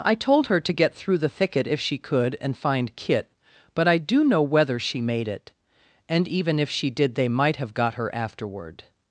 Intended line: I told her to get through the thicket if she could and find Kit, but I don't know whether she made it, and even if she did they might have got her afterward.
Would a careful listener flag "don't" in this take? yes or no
yes